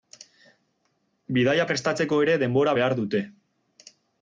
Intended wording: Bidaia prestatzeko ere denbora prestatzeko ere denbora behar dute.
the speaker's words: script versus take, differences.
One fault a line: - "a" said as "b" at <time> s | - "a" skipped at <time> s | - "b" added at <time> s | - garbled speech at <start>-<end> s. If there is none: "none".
- "prestatzeko ere denbora" skipped at 2.8 s